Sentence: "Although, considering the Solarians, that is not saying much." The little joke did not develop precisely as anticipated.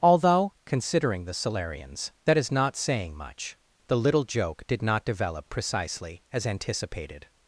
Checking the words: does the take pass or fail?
pass